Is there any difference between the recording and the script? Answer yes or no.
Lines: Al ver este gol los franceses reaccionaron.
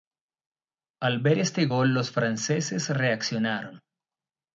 no